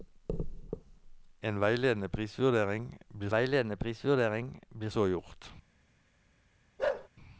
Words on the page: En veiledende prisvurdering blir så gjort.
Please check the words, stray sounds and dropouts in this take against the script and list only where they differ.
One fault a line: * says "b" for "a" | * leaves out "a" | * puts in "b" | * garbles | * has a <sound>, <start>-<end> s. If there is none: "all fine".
* puts in "veiledende prisvurdering blir"
* has a bark, 6.8-7.1 s